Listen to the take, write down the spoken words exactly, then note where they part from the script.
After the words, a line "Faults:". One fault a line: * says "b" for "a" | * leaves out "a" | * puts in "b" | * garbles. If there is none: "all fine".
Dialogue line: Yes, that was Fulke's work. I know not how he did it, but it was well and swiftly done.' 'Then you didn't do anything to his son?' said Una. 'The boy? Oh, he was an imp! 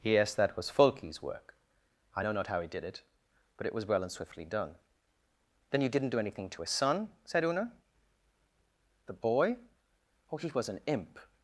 Yes, that was Fulke's work. I know not how he did it, but it was well and swiftly done.' 'Then you didn't do anything to his son?' said Una. 'The boy? Oh, he was an imp!
Faults:
all fine